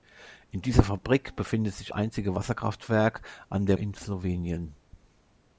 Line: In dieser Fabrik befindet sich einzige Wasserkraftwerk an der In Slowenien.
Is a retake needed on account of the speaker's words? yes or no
no